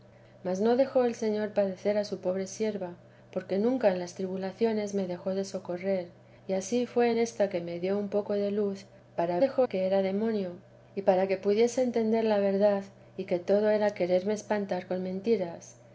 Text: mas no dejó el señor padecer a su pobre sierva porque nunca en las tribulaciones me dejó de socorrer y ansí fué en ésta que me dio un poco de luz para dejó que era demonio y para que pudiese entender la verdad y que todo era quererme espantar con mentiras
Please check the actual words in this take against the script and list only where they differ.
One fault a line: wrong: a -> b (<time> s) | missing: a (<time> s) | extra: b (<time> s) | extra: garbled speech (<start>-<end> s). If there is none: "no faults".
no faults